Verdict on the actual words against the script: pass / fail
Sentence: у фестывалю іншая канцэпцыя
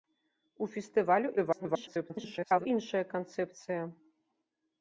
fail